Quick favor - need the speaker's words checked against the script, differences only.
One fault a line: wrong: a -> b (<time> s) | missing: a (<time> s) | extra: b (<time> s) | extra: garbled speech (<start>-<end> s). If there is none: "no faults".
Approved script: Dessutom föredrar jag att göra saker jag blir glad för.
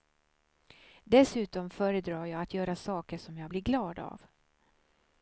extra: som (3.2 s)
wrong: för -> av (4.0 s)